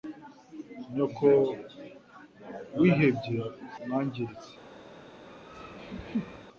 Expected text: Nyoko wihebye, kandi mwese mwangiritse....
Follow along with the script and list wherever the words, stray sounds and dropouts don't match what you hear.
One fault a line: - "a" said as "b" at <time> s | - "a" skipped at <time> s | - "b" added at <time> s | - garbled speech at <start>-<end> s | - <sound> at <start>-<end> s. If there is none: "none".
- "kandi mwese" skipped at 3.4 s
- laugh at 5.3-6.5 s